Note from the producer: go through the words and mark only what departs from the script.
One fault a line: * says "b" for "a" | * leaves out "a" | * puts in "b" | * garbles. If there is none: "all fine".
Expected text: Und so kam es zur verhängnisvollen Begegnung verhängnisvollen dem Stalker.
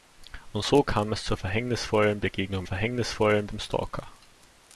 all fine